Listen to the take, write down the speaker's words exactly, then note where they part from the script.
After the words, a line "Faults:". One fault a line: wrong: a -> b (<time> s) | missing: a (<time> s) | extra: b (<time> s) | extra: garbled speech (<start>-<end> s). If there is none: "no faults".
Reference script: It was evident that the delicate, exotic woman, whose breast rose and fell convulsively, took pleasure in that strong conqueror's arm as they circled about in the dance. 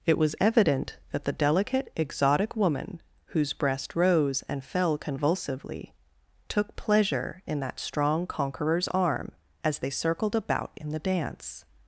It was evident that the delicate, exotic woman, whose breast rose and fell convulsively, took pleasure in that strong conqueror's arm as they circled about in the dance.
Faults:
no faults